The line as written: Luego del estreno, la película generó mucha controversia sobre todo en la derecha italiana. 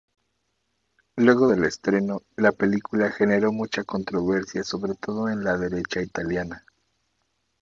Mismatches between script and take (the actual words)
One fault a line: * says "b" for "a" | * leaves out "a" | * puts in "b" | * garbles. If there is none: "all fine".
all fine